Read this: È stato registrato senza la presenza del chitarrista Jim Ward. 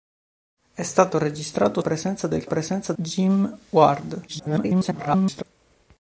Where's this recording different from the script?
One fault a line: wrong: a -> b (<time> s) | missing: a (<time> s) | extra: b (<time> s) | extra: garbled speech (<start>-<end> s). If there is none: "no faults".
missing: senza la (1.8 s)
wrong: chitarrista -> presenza (2.4 s)
extra: garbled speech (4.3-5.4 s)